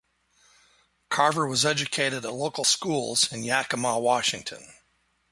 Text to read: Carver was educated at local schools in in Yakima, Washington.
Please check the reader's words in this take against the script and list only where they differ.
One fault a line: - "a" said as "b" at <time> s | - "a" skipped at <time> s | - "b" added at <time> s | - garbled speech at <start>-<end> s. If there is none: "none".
- "in" skipped at 3.4 s